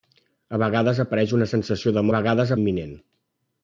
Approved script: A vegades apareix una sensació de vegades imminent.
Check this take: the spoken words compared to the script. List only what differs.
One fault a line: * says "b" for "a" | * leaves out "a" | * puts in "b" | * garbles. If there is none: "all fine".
all fine